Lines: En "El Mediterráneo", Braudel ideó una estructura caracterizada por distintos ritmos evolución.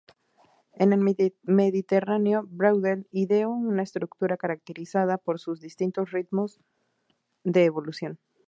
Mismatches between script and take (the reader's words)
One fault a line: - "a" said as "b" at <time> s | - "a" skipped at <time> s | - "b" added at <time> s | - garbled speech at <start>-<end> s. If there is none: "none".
- "sus" added at 5.4 s
- "de" added at 7.4 s